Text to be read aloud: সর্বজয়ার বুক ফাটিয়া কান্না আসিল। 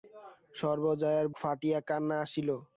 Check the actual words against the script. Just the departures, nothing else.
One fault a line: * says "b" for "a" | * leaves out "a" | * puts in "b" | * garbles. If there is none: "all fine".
* leaves out "বুক"